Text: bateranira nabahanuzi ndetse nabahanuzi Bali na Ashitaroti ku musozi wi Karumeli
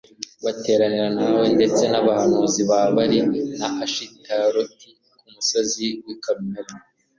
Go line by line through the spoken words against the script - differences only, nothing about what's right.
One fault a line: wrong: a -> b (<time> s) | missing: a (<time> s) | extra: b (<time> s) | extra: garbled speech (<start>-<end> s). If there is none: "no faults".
wrong: nabahanuzi -> nawe (1.2 s)
extra: ba (2.7 s)